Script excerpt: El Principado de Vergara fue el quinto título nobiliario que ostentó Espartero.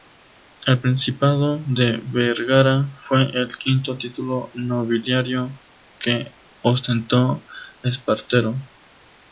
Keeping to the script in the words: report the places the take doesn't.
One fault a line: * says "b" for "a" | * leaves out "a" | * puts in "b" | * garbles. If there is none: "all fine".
all fine